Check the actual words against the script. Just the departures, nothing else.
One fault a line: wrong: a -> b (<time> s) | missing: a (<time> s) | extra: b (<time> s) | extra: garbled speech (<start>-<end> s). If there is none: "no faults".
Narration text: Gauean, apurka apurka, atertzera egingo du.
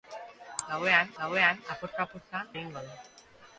extra: gauean (1.2 s)
missing: atertzera (2.4 s)